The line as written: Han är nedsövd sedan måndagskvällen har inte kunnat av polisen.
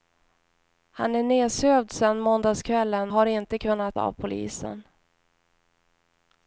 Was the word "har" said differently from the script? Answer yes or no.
no